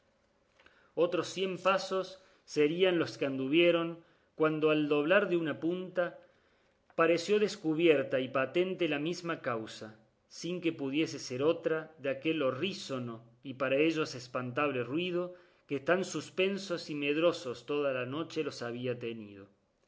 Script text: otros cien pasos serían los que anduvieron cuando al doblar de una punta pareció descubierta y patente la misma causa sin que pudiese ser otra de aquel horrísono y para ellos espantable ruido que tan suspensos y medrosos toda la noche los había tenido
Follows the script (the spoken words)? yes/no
yes